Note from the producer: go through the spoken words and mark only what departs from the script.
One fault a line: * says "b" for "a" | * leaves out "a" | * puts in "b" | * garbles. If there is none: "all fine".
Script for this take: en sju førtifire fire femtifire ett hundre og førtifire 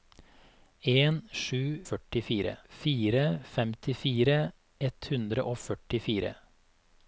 all fine